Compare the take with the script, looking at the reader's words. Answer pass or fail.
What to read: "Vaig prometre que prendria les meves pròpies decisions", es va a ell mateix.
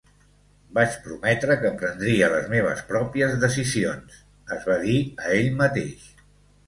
fail